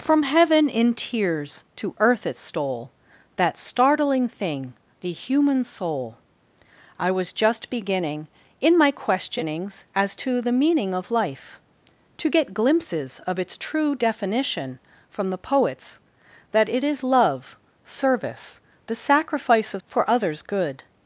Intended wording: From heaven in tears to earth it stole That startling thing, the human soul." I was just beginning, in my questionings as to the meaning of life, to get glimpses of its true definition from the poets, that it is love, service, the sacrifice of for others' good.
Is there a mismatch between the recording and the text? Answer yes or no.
no